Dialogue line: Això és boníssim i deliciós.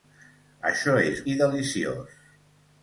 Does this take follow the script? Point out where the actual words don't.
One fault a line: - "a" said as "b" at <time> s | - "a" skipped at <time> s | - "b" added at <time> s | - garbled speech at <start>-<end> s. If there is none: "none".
- "boníssim" skipped at 1.2 s